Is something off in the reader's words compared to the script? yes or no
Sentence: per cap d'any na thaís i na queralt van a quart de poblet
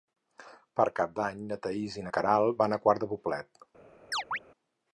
no